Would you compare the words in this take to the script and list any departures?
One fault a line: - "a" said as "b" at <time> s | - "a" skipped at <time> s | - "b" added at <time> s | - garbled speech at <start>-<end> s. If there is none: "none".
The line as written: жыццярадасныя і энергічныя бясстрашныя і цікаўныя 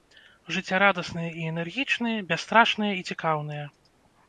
none